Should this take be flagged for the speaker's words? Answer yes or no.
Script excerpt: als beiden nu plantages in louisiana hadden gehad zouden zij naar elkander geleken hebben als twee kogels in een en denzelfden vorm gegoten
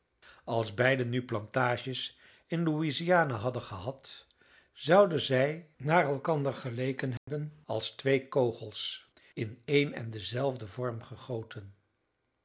no